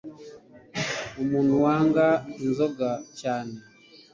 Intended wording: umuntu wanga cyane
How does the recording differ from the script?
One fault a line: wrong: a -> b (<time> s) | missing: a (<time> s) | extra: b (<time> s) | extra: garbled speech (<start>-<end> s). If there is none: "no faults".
extra: inzoga (2.4 s)